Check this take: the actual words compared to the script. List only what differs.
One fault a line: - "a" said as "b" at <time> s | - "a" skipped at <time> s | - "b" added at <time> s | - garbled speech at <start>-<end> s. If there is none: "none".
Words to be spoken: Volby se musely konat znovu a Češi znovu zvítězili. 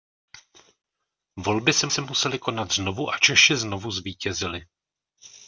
- "se" added at 1.9 s